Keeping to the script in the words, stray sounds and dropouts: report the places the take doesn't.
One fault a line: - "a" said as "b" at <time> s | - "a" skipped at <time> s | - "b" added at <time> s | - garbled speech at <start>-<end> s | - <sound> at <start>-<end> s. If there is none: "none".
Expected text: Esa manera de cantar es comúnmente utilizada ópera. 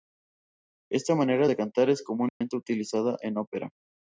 - "Esa" said as "Esta" at 0.9 s
- dropout at 2.3-2.4 s
- "en" added at 3.2 s